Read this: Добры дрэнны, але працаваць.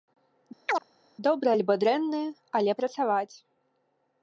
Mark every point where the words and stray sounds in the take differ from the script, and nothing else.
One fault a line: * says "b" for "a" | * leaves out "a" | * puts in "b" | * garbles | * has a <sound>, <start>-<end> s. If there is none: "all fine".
* has a chirp, 0.7-0.8 s
* puts in "альбо"